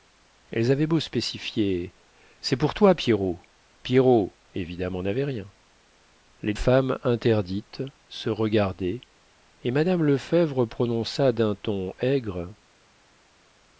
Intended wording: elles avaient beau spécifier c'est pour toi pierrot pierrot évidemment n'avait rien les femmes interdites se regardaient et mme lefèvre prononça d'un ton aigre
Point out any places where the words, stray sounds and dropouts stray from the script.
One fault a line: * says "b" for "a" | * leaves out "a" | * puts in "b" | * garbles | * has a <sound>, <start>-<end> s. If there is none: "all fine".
all fine